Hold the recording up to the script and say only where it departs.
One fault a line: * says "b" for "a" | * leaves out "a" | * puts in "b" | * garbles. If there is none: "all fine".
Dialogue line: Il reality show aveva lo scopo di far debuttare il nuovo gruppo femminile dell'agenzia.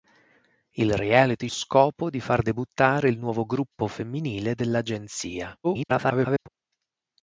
* leaves out "show aveva lo"
* garbles